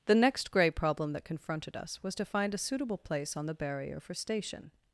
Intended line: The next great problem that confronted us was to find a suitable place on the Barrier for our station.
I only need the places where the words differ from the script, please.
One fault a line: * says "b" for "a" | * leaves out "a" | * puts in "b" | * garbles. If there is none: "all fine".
* says "grey" for "great"
* leaves out "our"